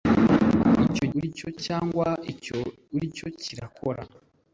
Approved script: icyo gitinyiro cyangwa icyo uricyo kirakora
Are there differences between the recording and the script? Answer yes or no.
yes